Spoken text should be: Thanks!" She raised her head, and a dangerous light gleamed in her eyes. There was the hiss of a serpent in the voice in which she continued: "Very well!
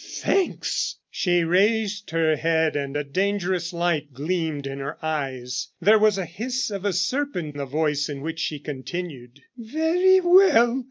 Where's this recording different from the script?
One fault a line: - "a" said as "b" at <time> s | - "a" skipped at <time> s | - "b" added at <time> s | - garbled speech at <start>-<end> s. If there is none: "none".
- "in" skipped at 7.6 s